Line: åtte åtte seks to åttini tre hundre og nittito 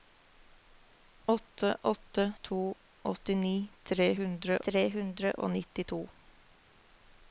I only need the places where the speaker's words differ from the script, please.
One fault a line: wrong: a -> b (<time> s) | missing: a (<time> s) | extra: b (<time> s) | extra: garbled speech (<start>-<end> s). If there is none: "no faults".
missing: seks (2.3 s)
extra: tre hundre (4.7 s)